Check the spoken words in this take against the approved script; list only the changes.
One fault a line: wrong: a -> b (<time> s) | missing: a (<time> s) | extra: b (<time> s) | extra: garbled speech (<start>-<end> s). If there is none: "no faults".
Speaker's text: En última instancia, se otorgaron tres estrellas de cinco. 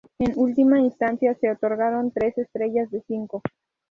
no faults